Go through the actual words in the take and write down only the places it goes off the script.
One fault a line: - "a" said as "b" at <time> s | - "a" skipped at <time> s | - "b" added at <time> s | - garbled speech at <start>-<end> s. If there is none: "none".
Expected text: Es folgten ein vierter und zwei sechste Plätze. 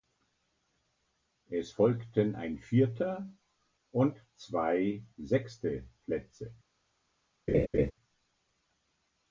none